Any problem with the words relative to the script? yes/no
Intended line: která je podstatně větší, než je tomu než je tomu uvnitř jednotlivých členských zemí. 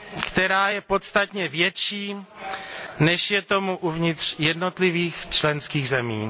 yes